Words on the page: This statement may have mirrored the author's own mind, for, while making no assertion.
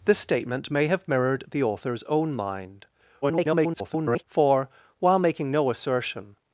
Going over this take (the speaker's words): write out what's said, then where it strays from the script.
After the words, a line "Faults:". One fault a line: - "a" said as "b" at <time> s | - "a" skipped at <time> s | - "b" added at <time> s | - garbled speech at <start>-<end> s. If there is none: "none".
This statement may have mirrored the author's own mind, [garbled] for, while making no assertion.
Faults:
- garbled speech at 3.2-4.2 s